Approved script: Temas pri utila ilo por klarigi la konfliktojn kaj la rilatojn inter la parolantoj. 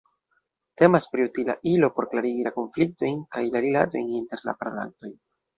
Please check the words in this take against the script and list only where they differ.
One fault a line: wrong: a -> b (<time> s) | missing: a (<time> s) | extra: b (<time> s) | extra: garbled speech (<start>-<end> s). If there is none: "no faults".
no faults